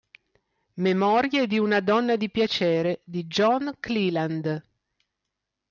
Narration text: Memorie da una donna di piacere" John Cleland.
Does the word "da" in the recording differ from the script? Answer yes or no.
yes